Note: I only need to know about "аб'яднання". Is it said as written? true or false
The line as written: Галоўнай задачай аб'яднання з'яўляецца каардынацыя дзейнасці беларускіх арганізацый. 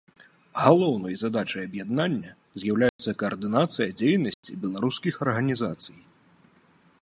true